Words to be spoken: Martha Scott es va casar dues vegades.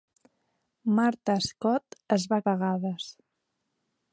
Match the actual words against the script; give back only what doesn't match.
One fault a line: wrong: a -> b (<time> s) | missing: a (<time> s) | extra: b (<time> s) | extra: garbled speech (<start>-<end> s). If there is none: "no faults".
missing: casar dues (2.4 s)